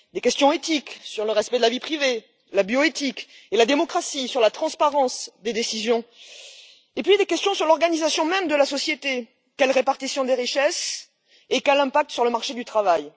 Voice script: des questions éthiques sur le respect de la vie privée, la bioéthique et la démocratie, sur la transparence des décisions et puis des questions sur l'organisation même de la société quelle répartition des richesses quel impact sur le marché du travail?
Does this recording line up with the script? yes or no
no